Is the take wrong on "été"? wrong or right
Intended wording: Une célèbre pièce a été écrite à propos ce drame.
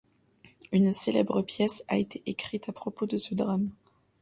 right